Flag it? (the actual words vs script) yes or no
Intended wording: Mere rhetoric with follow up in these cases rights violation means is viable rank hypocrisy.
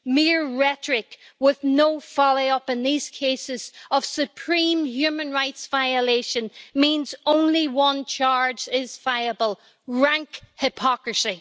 yes